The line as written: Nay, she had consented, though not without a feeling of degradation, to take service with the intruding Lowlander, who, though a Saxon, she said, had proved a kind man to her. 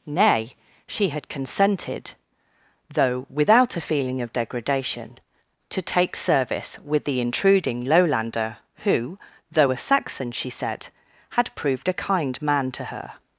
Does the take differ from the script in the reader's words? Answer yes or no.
yes